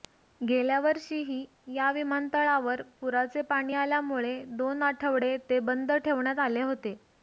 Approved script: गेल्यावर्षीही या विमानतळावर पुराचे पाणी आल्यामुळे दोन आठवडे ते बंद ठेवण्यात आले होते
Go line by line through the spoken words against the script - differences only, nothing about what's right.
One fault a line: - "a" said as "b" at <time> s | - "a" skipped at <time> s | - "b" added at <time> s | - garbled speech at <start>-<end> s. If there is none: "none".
none